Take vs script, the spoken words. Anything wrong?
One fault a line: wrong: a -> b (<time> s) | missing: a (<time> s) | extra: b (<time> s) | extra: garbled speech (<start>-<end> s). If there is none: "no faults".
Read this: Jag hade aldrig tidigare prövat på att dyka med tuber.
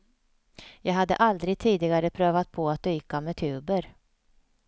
no faults